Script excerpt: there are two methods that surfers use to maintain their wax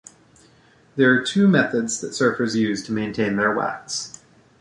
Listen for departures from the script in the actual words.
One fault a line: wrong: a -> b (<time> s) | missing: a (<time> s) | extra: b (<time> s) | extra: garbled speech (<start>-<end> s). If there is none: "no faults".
no faults